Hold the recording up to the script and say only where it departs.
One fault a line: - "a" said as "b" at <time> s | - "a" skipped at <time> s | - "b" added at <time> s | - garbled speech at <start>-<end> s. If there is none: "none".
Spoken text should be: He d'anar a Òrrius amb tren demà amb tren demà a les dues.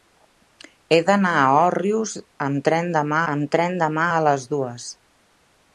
none